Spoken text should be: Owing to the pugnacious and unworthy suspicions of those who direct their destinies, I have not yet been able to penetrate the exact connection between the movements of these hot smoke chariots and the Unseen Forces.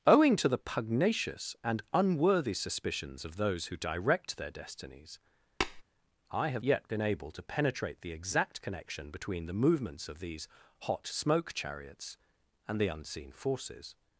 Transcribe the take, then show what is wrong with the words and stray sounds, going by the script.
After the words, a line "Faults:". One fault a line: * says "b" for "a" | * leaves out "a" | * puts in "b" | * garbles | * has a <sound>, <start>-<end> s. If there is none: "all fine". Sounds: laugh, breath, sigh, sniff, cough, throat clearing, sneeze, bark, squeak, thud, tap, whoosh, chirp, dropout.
Owing to the pugnacious and unworthy suspicions of those who direct their destinies, I have yet been able to penetrate the exact connection between the movements of these hot smoke chariots and the Unseen Forces.
Faults:
* has a tap, 5.6-5.8 s
* leaves out "not"